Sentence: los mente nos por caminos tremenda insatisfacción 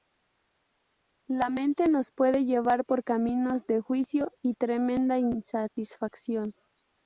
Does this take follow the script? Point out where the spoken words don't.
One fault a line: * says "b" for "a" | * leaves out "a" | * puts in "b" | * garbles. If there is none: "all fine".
* says "la" for "los"
* puts in "puede llevar"
* puts in "de juicio y"